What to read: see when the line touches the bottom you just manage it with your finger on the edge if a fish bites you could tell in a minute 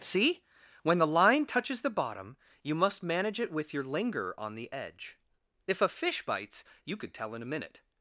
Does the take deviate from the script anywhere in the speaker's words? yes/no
yes